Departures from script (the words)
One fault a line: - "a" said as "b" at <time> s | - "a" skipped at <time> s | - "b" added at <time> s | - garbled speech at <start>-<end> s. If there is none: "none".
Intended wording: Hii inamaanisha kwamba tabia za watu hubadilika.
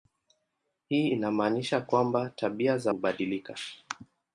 - "watu" skipped at 2.9 s